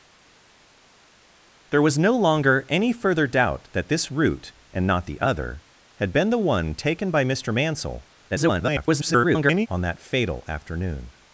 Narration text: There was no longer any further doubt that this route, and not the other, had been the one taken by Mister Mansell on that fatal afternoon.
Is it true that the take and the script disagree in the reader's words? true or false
true